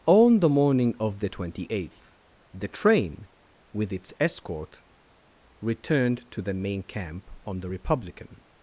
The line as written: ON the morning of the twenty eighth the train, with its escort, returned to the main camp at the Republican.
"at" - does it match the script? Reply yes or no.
no